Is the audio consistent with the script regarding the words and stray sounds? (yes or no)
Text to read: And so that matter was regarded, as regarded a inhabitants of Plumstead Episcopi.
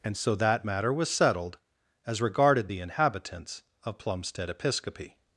no